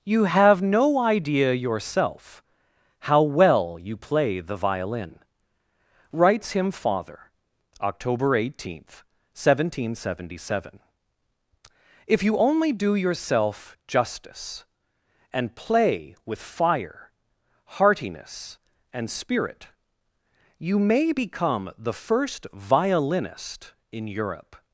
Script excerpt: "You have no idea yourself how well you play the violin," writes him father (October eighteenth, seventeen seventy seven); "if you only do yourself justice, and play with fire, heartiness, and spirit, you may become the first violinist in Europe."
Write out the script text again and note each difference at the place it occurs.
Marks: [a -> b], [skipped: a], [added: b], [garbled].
"You have no idea yourself how well you play the violin," writes him father (October eighteenth, seventeen seventy seven); "if you only do yourself justice, and play with fire, heartiness, and spirit, you may become the first violinist in Europe."